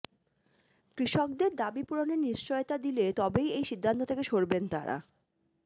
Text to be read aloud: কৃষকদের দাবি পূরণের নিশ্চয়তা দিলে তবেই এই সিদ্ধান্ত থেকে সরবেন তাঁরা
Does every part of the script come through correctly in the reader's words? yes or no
yes